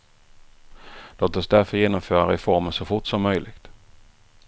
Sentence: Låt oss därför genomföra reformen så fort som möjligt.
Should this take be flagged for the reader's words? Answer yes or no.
no